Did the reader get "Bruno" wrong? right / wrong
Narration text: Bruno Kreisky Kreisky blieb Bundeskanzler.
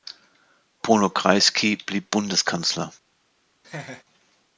right